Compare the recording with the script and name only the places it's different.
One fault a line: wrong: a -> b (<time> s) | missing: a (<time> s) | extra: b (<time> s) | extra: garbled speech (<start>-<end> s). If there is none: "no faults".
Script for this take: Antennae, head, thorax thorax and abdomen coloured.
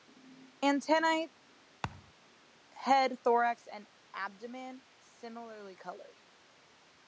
missing: thorax (3.7 s)
extra: similarly (5.0 s)